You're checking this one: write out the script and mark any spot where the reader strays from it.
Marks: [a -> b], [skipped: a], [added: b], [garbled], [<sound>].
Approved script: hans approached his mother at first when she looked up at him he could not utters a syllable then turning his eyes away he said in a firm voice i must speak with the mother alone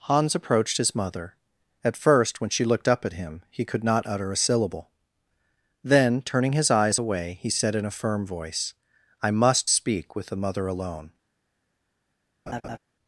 hans approached his mother at first when she looked up at him he could not [utters -> utter] a syllable then turning his eyes away he said in a firm voice i must speak with the mother alone [laugh]